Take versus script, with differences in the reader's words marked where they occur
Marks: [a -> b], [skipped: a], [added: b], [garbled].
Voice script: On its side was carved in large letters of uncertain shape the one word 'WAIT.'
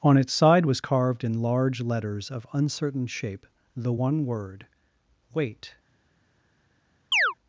On its side was carved in large letters of uncertain shape the one word 'WAIT.'